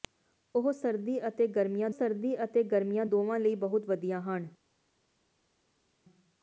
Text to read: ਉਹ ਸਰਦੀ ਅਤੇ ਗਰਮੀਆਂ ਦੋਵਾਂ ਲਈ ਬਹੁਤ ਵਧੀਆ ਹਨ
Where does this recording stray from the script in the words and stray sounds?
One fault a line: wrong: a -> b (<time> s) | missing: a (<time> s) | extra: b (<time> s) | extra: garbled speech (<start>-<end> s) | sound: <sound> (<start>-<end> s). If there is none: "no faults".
extra: ਸਰਦੀ ਅਤੇ ਗਰਮੀਆਂ (1.9 s)